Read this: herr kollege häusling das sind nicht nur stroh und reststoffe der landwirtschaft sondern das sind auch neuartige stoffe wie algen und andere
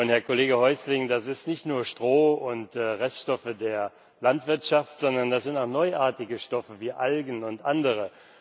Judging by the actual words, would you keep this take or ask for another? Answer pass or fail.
pass